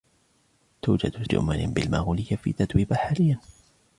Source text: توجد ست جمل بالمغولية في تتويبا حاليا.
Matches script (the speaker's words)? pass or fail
fail